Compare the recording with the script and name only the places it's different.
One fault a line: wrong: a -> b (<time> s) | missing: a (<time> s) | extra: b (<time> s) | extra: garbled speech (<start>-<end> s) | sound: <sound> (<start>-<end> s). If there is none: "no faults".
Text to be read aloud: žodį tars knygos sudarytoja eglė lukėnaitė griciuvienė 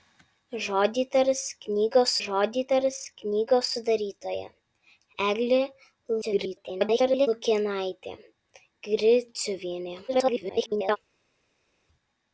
extra: žodį tars knygos (2.3 s)
extra: garbled speech (6.2-7.3 s)
extra: garbled speech (10.1-11.0 s)